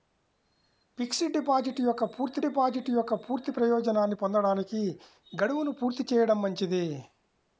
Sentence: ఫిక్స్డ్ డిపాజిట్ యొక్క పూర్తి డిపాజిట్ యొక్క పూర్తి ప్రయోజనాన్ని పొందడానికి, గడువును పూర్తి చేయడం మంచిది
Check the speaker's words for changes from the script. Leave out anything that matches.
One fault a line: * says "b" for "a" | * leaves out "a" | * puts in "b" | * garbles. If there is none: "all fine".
all fine